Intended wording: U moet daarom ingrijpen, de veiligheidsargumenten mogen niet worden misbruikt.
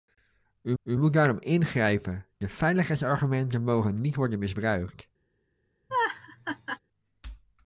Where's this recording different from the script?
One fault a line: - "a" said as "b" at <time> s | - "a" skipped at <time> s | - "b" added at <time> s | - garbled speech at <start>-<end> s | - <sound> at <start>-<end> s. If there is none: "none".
- "u" added at 0.8 s
- laugh at 5.9-6.8 s